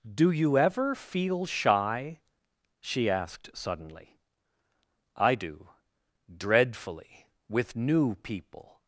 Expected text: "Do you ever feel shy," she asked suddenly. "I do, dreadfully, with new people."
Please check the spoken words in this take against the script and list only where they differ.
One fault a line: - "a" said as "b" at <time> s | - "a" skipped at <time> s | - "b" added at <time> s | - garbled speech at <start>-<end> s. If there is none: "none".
none